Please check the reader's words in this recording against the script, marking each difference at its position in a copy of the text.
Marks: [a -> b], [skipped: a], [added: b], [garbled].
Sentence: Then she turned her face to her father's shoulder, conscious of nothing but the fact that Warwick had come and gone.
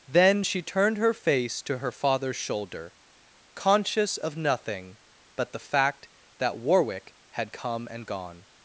Then she turned her face to her father's shoulder, conscious of nothing but the fact that Warwick had come and gone.